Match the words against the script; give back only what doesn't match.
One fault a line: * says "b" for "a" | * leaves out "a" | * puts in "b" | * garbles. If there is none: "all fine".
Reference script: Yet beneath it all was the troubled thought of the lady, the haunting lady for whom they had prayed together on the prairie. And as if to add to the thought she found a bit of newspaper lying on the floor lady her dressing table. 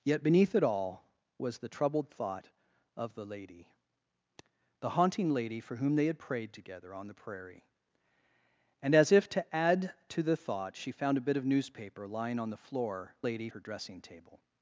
all fine